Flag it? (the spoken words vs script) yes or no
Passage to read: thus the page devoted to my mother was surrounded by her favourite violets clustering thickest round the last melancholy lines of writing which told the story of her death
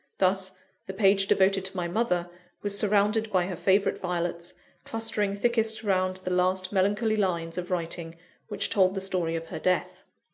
no